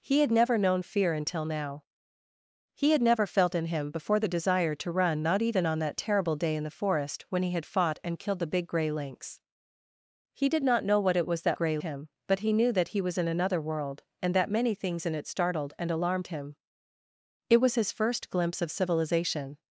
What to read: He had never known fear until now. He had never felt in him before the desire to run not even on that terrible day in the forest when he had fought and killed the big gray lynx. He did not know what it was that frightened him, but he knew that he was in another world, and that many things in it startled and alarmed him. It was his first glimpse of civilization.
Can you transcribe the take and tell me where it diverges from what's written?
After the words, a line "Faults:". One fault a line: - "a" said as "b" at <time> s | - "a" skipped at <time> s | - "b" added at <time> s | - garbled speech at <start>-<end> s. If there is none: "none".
He had never known fear until now. He had never felt in him before the desire to run not even on that terrible day in the forest when he had fought and killed the big gray lynx. He did not know what it was that gray him, but he knew that he was in another world, and that many things in it startled and alarmed him. It was his first glimpse of civilization.
Faults:
- "frightened" said as "gray" at 11.5 s